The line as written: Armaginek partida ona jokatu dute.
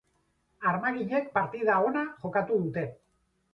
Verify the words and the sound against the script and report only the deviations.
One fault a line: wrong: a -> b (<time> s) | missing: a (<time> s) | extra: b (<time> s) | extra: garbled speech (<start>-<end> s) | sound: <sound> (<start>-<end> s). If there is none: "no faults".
no faults